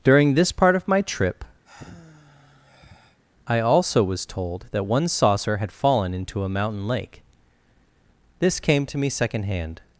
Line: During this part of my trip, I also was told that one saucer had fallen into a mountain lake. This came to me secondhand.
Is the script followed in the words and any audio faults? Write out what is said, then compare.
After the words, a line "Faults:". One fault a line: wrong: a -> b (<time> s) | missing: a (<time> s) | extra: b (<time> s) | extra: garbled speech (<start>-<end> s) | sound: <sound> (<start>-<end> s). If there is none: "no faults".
During this part of my trip, I also was told that one saucer had fallen into a mountain lake. This came to me secondhand.
Faults:
sound: sigh (1.6-3.2 s)